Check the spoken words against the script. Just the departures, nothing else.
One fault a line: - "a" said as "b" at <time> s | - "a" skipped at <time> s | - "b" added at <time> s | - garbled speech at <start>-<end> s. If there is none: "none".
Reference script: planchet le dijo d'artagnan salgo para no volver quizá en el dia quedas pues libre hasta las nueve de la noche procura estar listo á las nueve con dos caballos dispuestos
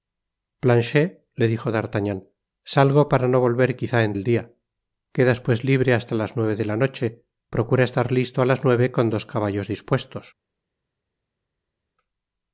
none